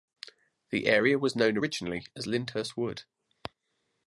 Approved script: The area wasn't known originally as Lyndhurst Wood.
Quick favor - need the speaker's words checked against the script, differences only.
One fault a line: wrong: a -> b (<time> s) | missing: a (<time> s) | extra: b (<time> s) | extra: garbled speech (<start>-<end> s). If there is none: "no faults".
wrong: wasn't -> was (1.2 s)